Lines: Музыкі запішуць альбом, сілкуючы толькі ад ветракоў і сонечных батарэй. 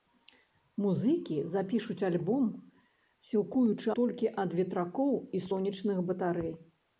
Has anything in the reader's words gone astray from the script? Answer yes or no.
no